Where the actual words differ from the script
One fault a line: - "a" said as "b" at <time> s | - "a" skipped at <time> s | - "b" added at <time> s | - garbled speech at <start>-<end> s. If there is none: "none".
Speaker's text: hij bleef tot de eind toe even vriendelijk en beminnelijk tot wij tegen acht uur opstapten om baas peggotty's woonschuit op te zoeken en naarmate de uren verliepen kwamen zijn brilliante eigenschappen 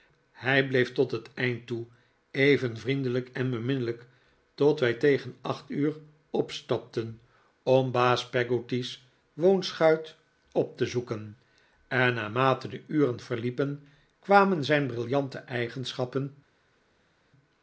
- "de" said as "het" at 1.1 s